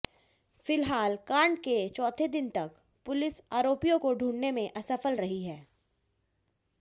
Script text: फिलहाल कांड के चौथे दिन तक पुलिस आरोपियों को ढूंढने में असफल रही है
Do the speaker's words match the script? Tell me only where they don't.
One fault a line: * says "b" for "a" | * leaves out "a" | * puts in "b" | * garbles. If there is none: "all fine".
all fine